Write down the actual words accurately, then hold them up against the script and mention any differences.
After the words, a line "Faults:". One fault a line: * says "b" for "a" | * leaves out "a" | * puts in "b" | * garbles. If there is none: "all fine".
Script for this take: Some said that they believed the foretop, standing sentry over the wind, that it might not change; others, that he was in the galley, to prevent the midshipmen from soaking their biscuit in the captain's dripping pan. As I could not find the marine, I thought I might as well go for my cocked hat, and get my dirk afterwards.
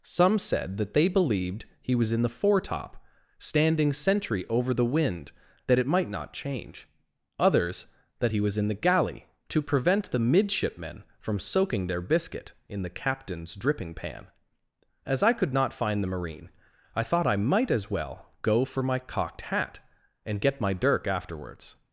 Some said that they believed he was in the foretop, standing sentry over the wind, that it might not change; others, that he was in the galley, to prevent the midshipmen from soaking their biscuit in the captain's dripping pan. As I could not find the marine, I thought I might as well go for my cocked hat, and get my dirk afterwards.
Faults:
* puts in "he was in"